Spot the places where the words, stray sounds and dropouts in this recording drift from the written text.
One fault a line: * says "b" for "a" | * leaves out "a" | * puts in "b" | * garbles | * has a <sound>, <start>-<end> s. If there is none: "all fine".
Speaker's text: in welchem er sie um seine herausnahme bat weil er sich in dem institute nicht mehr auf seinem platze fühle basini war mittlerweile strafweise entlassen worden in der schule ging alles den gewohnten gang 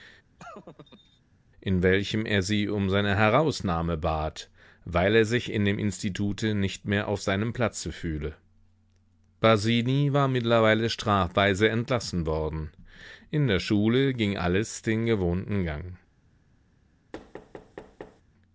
* has a laugh, 0.4-1.2 s
* has a thud, 17.1-18.2 s